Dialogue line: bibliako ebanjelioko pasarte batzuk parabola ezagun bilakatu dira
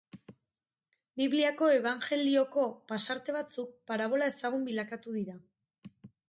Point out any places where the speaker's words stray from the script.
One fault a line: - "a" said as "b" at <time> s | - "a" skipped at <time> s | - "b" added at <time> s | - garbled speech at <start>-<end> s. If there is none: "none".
none